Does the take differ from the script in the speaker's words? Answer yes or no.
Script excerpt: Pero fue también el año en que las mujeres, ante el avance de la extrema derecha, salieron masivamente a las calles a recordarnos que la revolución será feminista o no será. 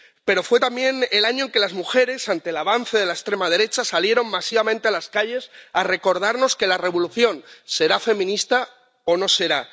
no